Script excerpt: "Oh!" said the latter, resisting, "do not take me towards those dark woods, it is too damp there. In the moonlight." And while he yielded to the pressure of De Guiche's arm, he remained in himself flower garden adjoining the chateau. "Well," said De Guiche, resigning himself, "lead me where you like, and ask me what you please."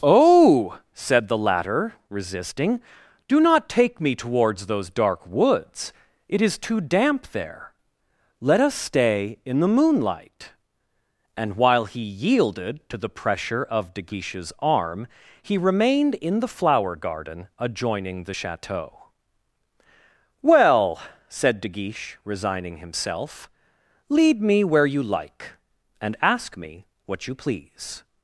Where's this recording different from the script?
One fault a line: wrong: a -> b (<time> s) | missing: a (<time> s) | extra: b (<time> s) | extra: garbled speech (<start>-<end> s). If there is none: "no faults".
extra: Let us stay (8.4 s)
wrong: himself -> the (16.4 s)